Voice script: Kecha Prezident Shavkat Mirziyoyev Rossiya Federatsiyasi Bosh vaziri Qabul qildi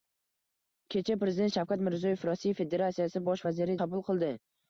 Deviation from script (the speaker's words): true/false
false